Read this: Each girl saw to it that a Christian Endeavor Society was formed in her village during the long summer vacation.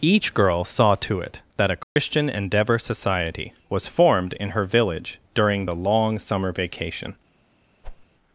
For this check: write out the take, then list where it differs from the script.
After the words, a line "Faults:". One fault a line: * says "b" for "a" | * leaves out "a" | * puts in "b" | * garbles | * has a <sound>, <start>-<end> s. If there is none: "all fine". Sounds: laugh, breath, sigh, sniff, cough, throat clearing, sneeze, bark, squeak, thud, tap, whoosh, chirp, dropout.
Each girl saw to it that a Christian Endeavor Society was formed in her village during the long summer vacation.
Faults:
* has a dropout, 1.8-2.0 s
* has a whoosh, 7.8-8.1 s